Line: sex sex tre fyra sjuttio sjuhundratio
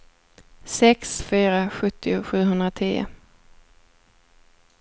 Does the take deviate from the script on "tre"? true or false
true